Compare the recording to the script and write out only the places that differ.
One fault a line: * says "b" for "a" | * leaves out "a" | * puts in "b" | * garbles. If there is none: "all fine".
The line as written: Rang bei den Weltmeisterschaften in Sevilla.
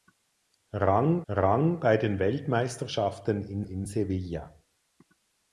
* puts in "rang"
* puts in "in"